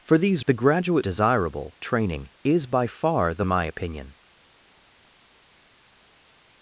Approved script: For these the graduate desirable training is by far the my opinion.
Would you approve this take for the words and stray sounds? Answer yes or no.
yes